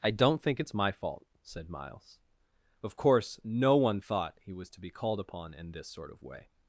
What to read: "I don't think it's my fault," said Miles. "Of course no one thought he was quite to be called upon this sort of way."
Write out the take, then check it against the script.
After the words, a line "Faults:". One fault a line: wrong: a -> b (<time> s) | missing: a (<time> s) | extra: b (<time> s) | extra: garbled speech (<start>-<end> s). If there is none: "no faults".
"I don't think it's my fault," said Miles. "Of course no one thought he was to be called upon in this sort of way."
Faults:
missing: quite (4.7 s)
extra: in (5.5 s)